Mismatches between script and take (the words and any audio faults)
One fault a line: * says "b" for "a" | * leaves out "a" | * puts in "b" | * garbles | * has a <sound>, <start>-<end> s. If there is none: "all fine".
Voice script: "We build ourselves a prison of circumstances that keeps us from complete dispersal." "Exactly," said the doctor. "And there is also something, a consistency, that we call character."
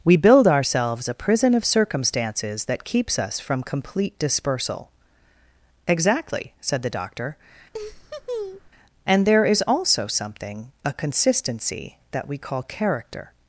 * has a laugh, 7.7-8.7 s